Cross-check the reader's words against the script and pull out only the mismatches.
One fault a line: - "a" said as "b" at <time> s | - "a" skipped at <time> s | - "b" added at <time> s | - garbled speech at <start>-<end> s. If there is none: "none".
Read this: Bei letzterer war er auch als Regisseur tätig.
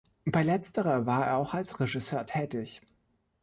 none